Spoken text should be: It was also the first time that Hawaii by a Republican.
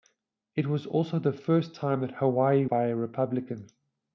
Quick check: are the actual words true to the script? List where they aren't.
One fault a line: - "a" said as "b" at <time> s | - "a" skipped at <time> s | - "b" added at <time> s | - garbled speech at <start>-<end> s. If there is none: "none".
none